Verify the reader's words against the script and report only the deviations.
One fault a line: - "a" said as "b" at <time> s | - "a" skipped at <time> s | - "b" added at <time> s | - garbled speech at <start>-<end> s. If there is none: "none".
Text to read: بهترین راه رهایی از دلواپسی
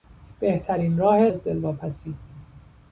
- "رهایی" skipped at 1.3 s